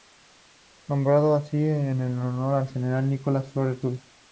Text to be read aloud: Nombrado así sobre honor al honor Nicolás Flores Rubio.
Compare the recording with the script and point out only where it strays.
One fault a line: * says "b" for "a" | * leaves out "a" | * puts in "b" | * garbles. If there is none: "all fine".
* says "en" for "sobre"
* says "general" for "honor"